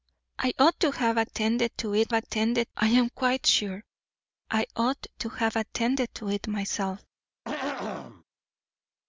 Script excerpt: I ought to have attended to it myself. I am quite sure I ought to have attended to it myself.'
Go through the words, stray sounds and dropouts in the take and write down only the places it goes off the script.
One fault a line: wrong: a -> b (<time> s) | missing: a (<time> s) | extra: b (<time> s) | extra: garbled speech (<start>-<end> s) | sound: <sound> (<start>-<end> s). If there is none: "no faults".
wrong: myself -> attended (2.1 s)
sound: throat clearing (7.4-8.2 s)